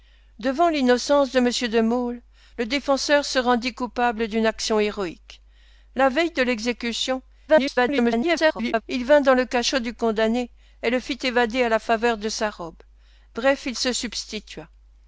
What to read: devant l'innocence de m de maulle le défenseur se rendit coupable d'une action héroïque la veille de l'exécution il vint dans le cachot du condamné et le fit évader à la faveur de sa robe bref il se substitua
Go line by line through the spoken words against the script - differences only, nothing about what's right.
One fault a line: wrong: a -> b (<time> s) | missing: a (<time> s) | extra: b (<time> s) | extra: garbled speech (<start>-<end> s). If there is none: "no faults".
extra: garbled speech (7.5-8.8 s)